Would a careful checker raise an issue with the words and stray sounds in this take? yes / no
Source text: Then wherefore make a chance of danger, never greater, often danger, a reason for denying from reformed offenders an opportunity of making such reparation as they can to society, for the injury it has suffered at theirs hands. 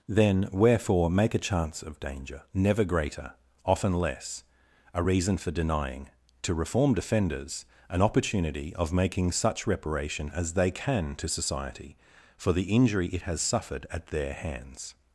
yes